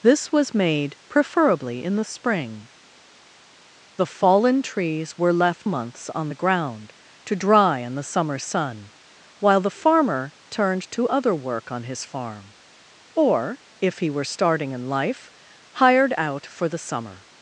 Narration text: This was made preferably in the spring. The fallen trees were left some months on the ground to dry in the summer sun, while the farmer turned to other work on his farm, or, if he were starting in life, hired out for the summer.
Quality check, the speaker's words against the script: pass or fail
fail